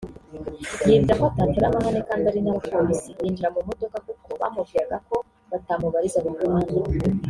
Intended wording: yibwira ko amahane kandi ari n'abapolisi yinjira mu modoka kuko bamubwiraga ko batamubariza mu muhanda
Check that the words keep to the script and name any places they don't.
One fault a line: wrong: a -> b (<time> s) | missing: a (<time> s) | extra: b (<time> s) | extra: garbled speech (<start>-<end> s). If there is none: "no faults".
extra: atatera (1.3 s)